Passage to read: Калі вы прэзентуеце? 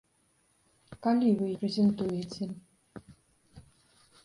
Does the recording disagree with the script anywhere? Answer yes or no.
no